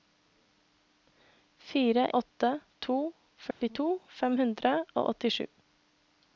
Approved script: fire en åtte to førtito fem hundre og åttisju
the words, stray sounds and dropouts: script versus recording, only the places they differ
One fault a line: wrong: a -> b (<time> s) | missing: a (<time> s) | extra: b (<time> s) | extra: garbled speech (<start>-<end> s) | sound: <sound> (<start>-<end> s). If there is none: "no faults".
missing: en (2.0 s)
sound: dropout (3.5-3.6 s)